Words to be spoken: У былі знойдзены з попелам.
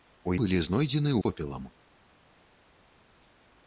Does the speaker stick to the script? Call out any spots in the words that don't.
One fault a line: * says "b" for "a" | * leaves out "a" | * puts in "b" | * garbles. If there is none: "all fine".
all fine